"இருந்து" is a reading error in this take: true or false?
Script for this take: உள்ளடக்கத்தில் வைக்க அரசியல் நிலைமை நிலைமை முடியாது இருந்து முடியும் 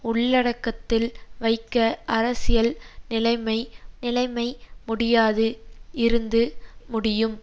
false